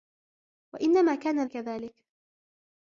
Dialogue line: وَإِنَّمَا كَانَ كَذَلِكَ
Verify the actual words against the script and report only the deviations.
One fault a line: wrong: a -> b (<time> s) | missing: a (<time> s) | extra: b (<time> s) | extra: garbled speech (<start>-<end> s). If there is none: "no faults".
no faults